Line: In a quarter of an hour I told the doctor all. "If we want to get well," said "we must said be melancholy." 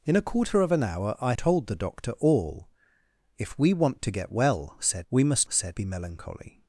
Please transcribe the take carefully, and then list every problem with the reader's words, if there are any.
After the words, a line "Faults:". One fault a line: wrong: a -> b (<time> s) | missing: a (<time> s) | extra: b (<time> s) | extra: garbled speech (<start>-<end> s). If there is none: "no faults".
In a quarter of an hour I told the doctor all. "If we want to get well," said "we must said be melancholy."
Faults:
no faults